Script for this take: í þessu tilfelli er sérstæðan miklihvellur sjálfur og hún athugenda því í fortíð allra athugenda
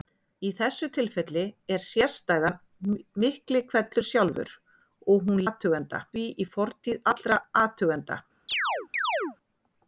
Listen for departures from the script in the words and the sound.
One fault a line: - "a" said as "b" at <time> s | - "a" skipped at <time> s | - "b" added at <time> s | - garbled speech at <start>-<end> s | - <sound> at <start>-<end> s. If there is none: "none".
- chirp at 8.5-9.4 s